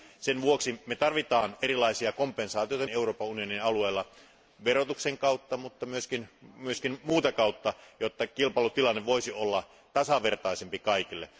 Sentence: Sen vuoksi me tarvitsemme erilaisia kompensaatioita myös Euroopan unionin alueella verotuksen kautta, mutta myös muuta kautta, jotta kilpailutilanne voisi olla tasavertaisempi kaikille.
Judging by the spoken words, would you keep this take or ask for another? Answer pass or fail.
fail